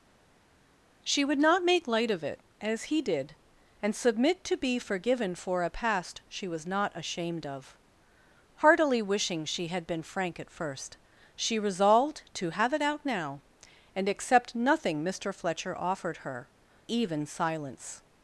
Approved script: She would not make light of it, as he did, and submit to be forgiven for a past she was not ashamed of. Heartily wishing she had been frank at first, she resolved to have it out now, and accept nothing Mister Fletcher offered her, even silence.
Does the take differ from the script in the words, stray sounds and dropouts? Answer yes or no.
no